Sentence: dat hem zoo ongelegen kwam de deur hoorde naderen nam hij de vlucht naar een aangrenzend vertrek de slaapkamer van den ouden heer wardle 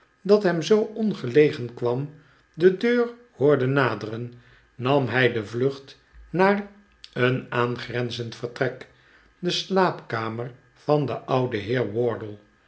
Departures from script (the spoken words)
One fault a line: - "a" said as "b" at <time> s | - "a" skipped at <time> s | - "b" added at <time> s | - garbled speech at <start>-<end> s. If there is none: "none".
none